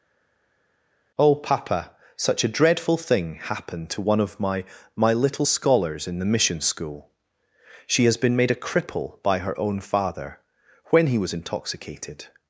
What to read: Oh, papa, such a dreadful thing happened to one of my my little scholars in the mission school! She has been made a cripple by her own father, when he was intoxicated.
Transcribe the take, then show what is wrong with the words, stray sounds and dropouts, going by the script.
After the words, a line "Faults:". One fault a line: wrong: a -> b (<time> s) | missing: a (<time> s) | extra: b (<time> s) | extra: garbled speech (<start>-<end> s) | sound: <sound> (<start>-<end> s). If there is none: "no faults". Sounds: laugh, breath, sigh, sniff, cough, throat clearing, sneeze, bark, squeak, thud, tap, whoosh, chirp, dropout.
Oh, papa, such a dreadful thing happened to one of my my little scholars in the mission school! She has been made a cripple by her own father, when he was intoxicated.
Faults:
no faults